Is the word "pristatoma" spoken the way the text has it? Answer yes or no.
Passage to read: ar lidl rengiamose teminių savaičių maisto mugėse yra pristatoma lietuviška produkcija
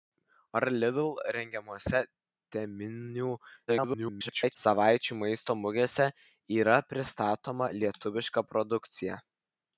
yes